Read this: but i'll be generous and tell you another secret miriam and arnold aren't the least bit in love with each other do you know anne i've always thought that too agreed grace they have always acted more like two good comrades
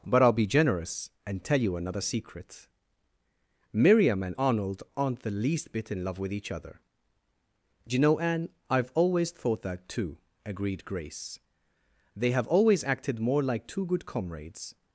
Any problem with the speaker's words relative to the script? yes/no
no